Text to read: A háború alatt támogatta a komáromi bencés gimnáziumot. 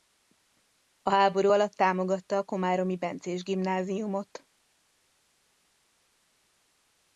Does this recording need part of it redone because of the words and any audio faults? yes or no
no